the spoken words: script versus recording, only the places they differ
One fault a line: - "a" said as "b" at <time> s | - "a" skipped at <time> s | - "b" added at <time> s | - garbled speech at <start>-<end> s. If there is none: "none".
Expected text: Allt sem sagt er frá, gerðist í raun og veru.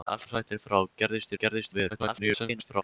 - "sem" skipped at 0.3 s
- "raun" said as "gerðist" at 1.4 s
- garbled speech at 1.9-2.8 s